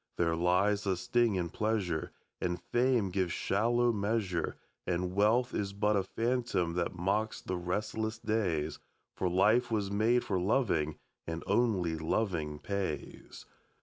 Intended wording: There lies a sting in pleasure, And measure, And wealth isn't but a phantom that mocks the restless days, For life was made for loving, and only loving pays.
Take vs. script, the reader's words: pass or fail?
fail